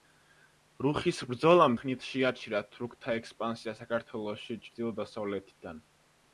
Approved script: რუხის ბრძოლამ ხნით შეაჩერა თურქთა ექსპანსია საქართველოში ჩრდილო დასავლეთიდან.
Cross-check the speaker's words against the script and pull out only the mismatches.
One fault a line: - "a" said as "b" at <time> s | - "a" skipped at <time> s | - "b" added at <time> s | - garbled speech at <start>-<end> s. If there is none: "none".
none